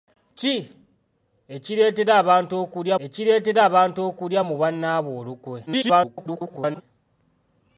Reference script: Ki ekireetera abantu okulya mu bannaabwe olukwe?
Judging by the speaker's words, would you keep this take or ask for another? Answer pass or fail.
fail